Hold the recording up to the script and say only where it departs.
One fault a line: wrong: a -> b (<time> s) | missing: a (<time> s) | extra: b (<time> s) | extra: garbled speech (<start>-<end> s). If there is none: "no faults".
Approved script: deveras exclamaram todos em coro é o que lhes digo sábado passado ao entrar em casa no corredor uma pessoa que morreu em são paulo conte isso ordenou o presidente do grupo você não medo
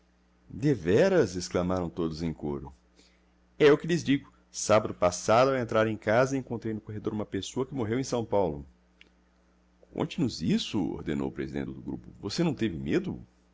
extra: encontrei (6.4 s)
extra: nos (10.2 s)
extra: teve (12.5 s)